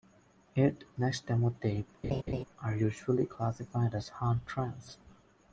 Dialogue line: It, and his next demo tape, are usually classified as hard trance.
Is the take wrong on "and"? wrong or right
wrong